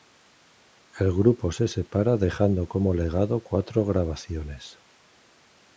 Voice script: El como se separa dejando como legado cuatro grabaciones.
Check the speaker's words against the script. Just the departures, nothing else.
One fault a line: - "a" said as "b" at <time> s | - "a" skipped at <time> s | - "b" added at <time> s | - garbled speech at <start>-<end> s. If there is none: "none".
- "como" said as "grupo" at 1.1 s